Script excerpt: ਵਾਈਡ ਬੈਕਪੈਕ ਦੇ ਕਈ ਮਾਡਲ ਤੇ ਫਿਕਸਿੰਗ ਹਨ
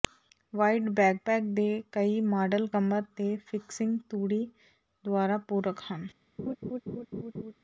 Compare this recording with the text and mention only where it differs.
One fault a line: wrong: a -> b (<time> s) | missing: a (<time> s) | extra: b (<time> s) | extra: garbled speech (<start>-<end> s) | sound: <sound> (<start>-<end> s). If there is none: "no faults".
extra: ਕਮਰ (2.7 s)
extra: ਤੂੜੀ ਦੁਆਰਾ ਪੂਰਕ (4.1 s)
sound: laugh (6.4-7.5 s)